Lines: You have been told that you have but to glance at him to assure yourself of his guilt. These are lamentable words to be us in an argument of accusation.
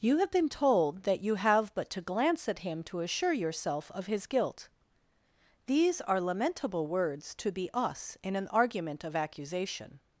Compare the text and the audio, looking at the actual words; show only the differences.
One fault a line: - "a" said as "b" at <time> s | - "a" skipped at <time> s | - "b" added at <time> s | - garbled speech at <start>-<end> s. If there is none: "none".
none